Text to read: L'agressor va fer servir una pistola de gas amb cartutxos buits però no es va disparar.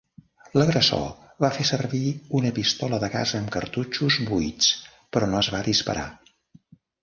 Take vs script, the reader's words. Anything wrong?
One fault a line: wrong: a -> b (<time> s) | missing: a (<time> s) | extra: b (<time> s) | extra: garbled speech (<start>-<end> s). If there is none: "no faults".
no faults